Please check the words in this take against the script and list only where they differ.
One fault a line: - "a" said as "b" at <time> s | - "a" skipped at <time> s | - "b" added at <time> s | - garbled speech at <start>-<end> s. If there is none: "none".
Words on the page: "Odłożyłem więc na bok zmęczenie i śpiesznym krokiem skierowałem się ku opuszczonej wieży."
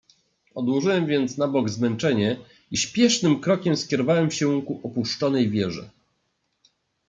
none